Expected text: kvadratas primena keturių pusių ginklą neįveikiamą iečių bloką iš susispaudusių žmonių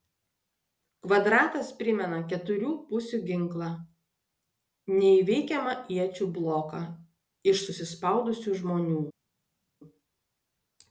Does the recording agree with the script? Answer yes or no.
yes